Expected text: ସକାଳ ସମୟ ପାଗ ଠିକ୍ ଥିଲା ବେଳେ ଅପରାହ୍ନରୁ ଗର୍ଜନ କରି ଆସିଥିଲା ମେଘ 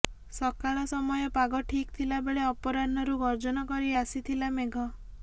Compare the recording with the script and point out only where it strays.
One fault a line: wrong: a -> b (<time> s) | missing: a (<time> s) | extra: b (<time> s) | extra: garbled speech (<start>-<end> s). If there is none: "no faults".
no faults